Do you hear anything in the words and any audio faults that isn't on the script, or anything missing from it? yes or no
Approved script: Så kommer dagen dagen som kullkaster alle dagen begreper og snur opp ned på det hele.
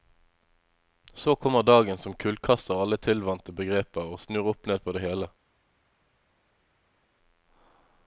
yes